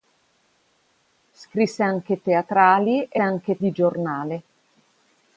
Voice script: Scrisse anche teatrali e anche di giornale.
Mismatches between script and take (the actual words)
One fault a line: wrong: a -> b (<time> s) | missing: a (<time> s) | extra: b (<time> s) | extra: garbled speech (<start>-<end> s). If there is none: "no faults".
no faults